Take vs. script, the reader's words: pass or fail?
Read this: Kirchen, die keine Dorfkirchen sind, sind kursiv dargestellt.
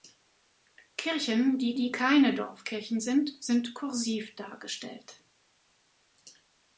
fail